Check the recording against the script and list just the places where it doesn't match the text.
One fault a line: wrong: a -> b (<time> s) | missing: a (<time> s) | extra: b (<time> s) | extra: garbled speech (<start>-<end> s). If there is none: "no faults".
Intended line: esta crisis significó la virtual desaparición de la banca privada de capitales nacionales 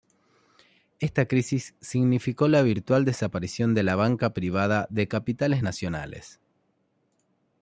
no faults